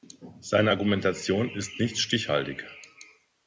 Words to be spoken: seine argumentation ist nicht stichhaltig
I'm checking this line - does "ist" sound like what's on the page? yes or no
yes